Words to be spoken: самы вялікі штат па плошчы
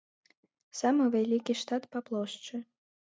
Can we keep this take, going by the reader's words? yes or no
yes